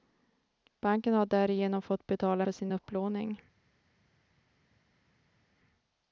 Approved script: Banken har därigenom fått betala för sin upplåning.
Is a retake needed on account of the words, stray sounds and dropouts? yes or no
no